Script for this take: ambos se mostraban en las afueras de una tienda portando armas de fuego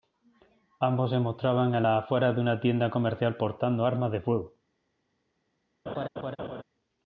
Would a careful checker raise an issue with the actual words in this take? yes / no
yes